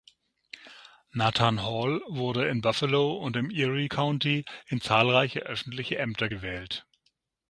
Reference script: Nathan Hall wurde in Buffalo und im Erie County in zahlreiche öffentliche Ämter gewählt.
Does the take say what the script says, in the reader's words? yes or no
yes